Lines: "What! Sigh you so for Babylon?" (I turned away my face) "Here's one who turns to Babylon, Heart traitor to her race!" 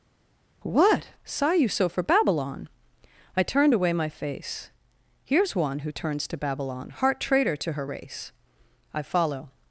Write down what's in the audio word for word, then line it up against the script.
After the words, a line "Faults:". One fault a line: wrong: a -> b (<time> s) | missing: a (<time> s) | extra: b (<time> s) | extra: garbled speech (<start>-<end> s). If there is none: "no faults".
"What! Sigh you so for Babylon?" (I turned away my face) "Here's one who turns to Babylon, Heart traitor to her race!" I follow
Faults:
extra: I follow (8.9 s)